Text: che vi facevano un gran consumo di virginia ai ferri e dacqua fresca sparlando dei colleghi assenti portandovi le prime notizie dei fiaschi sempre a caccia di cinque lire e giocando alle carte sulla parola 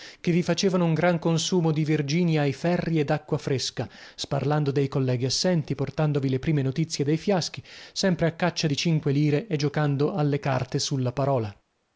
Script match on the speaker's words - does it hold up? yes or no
yes